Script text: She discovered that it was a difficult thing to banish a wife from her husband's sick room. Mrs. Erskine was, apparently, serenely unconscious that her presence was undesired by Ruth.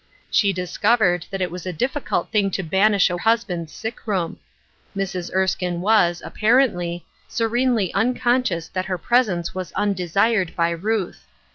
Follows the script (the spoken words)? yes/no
no